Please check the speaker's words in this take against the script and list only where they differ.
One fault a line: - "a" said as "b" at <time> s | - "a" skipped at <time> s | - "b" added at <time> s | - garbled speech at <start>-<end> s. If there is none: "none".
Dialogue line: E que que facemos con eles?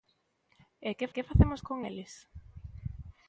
none